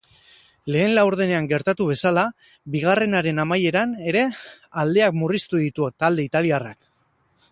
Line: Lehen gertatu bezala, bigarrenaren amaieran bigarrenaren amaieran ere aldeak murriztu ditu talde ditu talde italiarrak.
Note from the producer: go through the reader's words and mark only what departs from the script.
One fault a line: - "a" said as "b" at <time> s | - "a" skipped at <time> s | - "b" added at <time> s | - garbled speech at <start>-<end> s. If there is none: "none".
- "laurdenean" added at 1.0 s
- "bigarrenaren amaieran" skipped at 3.9 s
- "ditu talde" skipped at 6.3 s